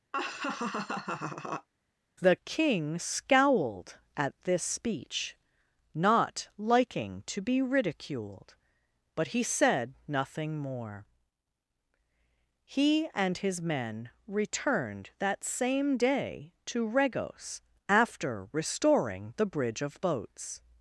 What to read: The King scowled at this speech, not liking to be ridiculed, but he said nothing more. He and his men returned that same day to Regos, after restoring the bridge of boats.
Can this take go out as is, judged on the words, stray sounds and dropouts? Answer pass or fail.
fail